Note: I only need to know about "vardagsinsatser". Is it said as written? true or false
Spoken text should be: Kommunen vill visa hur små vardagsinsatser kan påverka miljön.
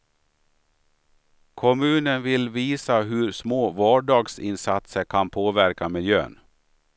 true